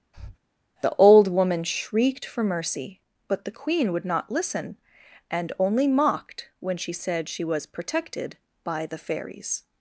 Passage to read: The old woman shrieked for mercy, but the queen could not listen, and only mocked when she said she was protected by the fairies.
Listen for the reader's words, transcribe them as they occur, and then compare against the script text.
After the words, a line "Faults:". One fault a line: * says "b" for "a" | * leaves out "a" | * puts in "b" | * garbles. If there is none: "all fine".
The old woman shrieked for mercy, but the queen would not listen, and only mocked when she said she was protected by the fairies.
Faults:
* says "would" for "could"